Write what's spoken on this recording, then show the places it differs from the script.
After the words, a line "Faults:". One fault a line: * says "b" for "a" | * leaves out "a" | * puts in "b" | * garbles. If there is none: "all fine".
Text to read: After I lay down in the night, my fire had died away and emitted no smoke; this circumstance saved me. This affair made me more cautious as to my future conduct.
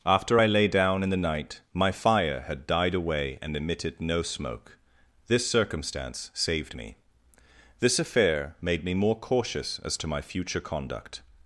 After I lay down in the night, my fire had died away and emitted no smoke; this circumstance saved me. This affair made me more cautious as to my future conduct.
Faults:
all fine